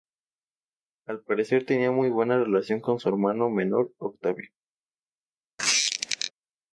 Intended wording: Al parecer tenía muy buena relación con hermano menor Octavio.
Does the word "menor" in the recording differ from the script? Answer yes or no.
no